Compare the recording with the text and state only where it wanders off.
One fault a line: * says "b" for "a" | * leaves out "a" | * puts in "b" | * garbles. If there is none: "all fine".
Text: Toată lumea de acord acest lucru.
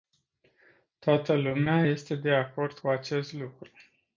* puts in "este"
* puts in "cu"